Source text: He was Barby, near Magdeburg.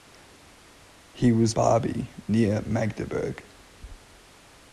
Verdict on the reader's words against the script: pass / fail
pass